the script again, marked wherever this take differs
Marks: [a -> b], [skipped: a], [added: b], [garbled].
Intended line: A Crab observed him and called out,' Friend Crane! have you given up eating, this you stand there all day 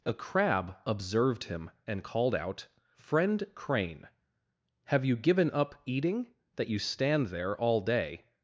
A Crab observed him and called out,' Friend Crane! have you given up eating, [this -> that] you stand there all day